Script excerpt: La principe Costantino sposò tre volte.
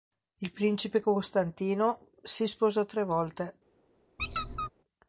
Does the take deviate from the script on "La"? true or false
true